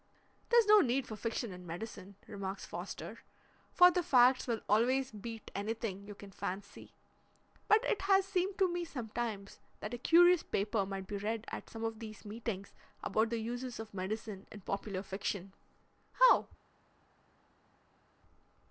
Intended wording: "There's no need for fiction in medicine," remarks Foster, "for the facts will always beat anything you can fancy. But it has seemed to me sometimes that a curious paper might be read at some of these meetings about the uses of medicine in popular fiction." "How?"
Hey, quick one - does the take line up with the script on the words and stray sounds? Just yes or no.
yes